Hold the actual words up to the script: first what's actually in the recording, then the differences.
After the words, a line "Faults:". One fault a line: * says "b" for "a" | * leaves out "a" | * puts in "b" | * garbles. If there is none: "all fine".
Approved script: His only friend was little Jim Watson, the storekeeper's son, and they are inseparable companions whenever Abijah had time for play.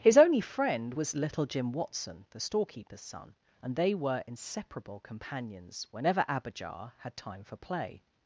His only friend was little Jim Watson, the storekeeper's son, and they were inseparable companions whenever Abijah had time for play.
Faults:
* says "were" for "are"